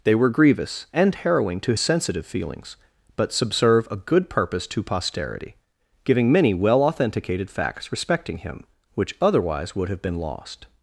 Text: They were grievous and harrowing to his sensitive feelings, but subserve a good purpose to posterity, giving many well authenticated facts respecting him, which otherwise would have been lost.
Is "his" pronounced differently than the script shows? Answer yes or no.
yes